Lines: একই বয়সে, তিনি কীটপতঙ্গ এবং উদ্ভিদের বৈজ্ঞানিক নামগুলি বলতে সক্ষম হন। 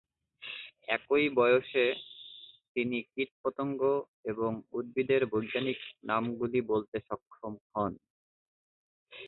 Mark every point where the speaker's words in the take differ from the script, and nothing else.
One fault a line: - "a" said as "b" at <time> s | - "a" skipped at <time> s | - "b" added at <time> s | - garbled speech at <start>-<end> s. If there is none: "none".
none